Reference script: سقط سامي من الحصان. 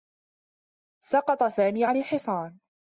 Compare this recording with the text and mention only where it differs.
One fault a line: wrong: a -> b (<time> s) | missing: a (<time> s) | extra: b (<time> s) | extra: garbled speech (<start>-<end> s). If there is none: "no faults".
wrong: من -> عن (1.8 s)